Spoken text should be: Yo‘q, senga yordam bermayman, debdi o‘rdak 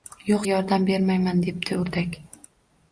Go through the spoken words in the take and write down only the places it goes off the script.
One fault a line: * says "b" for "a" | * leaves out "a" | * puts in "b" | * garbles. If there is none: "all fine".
* leaves out "senga"